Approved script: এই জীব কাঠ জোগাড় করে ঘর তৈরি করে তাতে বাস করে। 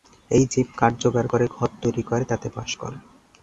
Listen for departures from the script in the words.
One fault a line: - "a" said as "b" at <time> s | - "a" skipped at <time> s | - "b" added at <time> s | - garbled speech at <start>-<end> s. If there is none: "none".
none